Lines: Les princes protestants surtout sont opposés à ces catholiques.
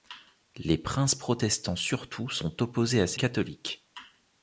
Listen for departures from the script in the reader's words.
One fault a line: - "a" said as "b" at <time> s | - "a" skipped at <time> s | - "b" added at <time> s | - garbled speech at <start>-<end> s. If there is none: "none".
none